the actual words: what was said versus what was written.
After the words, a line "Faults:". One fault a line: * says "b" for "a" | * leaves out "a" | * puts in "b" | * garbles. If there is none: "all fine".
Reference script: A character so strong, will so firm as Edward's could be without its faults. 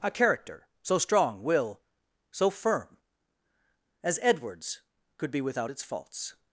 A character so strong, will so firm as Edward's could be without its faults.
Faults:
all fine